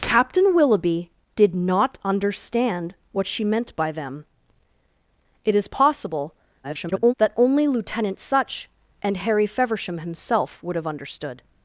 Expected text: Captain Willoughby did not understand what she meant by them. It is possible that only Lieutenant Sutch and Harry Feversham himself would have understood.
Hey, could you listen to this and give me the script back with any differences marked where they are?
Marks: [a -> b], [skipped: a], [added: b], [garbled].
Captain Willoughby did not understand what she meant by them. It is possible [garbled] that only Lieutenant Sutch and Harry Feversham himself would have understood.